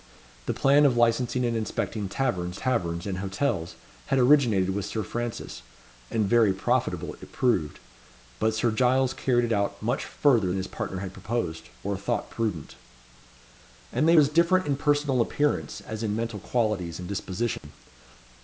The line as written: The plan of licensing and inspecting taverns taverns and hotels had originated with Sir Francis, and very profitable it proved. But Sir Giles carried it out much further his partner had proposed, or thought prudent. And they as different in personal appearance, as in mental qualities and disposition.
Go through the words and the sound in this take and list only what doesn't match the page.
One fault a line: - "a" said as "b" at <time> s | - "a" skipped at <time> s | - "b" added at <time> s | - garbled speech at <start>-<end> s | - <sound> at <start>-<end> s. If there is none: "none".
- dropout at 17.6-17.6 s